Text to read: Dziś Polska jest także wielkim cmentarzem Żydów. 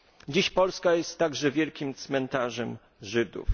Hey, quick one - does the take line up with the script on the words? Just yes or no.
yes